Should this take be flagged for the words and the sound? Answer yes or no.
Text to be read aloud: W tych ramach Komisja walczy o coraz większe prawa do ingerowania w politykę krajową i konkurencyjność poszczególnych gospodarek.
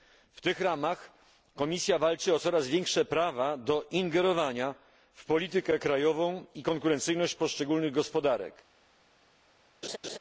yes